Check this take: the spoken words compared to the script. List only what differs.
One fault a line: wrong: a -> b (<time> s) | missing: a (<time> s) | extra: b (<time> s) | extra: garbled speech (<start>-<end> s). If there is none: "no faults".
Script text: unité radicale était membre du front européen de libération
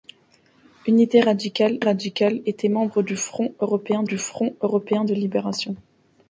extra: radicale (1.8 s)
extra: du front européen (4.0 s)